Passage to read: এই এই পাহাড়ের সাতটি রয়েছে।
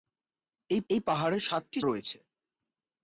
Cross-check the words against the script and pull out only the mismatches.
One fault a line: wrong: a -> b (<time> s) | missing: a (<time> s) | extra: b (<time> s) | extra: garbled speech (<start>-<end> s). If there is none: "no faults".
no faults